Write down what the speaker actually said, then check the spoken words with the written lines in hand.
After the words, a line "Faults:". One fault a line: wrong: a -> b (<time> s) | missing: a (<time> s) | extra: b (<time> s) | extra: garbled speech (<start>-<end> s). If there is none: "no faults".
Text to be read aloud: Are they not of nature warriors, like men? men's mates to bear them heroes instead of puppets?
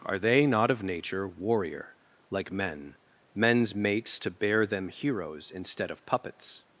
Are they not of nature warrior, like men? men's mates to bear them heroes instead of puppets?
Faults:
wrong: warriors -> warrior (1.3 s)